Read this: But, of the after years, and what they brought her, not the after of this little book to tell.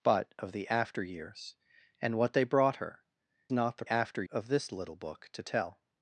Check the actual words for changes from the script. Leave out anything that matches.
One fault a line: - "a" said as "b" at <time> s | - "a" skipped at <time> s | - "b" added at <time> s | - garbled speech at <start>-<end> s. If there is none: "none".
none